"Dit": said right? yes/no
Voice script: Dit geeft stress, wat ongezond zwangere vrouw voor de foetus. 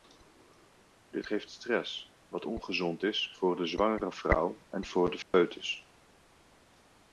yes